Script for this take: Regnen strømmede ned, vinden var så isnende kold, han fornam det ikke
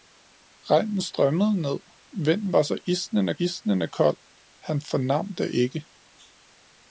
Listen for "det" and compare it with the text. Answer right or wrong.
right